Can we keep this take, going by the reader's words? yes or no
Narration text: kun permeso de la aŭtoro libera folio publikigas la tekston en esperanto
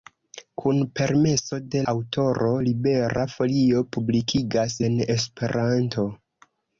no